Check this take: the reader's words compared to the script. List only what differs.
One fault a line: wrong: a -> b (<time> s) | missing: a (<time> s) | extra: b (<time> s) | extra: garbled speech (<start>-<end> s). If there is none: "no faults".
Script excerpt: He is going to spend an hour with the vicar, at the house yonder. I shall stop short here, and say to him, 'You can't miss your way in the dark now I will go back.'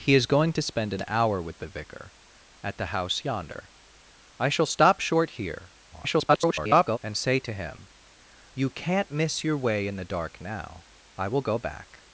extra: garbled speech (5.9-7.0 s)